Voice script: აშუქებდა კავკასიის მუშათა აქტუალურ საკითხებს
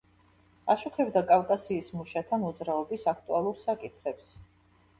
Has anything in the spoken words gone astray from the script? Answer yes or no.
yes